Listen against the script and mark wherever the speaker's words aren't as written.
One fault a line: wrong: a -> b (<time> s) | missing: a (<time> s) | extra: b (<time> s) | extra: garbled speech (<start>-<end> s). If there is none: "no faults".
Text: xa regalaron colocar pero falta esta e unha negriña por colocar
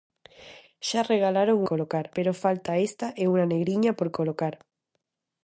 no faults